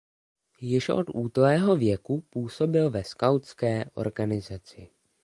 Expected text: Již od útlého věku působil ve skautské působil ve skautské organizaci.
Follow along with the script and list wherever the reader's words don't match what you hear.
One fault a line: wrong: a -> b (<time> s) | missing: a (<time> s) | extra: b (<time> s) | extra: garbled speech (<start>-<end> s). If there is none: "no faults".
missing: působil ve skautské (3.8 s)